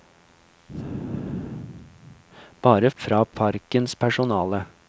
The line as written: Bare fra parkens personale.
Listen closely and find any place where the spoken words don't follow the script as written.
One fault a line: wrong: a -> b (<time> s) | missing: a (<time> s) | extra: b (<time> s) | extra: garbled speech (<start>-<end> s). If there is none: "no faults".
no faults